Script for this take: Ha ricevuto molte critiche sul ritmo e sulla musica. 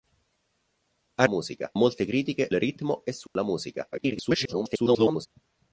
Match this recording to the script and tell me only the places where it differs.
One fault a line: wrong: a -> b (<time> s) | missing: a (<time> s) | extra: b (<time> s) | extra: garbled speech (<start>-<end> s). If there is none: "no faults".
wrong: ricevuto -> musica (1.3 s)
missing: sul (2.5 s)
extra: garbled speech (3.9-5.3 s)